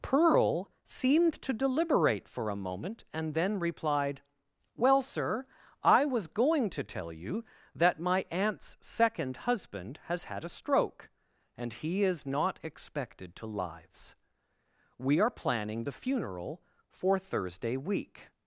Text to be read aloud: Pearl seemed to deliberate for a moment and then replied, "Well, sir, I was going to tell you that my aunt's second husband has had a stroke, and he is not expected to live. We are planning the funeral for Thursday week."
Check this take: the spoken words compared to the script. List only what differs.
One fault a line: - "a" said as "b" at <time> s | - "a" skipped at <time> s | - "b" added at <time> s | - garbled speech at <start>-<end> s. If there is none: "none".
- "live" said as "lives" at 13.5 s